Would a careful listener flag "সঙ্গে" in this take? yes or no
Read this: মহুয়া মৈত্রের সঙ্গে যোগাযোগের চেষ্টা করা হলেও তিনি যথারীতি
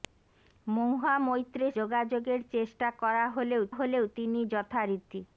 yes